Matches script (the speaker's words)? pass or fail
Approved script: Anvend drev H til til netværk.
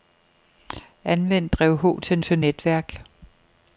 pass